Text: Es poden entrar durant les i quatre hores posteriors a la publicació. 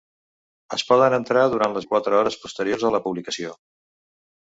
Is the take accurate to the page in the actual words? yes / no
yes